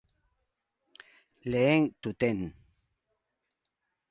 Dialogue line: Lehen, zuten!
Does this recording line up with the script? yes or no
yes